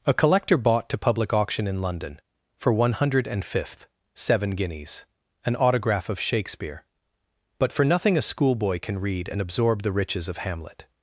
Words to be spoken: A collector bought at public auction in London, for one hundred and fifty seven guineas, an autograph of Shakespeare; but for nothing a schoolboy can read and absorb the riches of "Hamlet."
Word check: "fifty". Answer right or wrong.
wrong